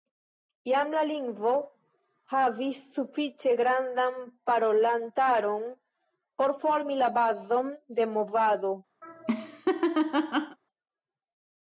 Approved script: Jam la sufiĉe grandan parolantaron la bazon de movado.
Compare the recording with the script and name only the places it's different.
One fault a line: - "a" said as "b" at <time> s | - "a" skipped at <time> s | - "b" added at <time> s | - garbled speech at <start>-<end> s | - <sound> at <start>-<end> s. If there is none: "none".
- "lingvo havis" added at 1.1 s
- "por formi" added at 6.4 s
- laugh at 9.0-10.6 s